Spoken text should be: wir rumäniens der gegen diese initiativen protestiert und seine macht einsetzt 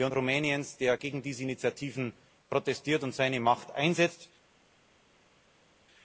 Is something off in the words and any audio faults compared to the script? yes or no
no